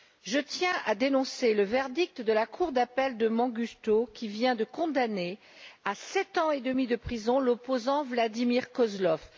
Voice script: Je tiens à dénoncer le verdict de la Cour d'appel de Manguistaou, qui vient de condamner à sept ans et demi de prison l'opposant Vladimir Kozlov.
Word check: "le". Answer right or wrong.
right